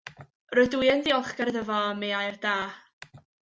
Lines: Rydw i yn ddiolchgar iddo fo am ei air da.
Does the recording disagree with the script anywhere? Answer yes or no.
no